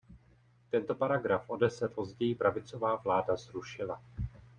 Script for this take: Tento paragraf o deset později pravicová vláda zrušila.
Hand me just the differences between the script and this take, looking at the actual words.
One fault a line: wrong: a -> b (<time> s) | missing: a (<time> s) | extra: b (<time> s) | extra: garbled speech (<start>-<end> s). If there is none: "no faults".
no faults